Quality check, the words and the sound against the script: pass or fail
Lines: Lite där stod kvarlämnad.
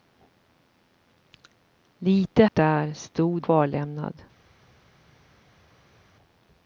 pass